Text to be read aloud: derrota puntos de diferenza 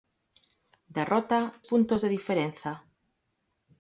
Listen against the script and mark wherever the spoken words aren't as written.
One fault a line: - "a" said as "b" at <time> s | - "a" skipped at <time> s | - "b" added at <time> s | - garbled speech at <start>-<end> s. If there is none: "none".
none